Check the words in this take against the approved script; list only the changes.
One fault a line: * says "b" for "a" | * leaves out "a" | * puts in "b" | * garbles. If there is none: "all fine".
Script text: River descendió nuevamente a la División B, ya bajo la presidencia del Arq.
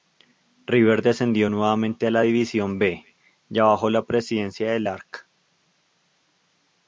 all fine